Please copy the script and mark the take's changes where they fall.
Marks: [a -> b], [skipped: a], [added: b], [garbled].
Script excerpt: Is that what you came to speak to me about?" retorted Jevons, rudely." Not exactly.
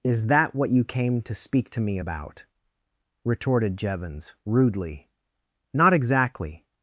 Is that what you came to speak to me about?" retorted Jevons, rudely." Not exactly.